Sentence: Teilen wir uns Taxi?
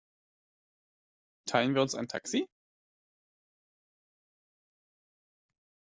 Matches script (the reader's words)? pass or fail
fail